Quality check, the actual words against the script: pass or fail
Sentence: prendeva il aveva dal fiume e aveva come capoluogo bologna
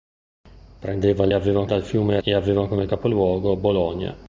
pass